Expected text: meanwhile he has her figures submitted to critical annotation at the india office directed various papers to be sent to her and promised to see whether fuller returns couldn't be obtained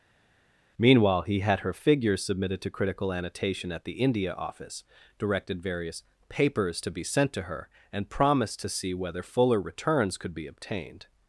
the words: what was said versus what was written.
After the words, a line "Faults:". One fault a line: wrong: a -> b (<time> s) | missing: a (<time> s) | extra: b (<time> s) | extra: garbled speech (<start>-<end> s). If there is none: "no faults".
meanwhile he had her figures submitted to critical annotation at the india office directed various papers to be sent to her and promised to see whether fuller returns could be obtained
Faults:
wrong: has -> had (1.4 s)
wrong: couldn't -> could (10.2 s)